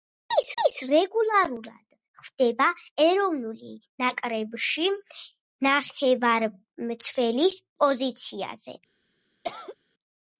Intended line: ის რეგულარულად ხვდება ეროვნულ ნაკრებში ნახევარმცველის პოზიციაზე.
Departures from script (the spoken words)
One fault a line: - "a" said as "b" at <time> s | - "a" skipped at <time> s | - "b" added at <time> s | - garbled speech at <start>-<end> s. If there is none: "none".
- "ის" added at 0.6 s